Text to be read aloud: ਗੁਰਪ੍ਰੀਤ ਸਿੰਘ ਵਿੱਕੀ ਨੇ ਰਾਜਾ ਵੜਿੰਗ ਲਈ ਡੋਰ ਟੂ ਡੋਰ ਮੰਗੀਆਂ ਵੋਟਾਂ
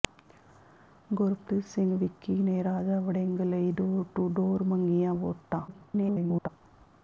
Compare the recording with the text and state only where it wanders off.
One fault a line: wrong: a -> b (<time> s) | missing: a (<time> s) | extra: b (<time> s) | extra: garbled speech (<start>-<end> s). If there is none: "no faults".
extra: garbled speech (5.7-6.5 s)